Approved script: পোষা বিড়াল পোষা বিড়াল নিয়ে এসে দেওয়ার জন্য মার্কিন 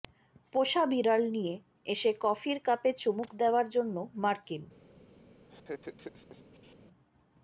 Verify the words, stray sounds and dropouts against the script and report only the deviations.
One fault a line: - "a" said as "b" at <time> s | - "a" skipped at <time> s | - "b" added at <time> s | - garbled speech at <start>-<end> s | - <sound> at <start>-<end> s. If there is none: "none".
- "পোষা বিড়াল নিয়ে এসে" said as "নিয়ে এসে কফির কাপে চুমুক" at 1.4 s
- laugh at 5.5-6.8 s